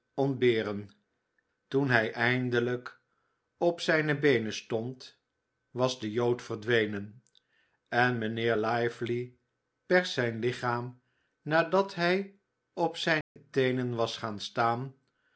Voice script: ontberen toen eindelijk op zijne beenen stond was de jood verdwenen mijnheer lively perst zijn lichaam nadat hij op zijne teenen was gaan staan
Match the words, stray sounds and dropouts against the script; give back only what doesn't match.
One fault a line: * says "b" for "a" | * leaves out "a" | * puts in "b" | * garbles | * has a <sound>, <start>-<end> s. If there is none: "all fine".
* puts in "hij"
* puts in "en"
* has a dropout, 13.2-13.4 s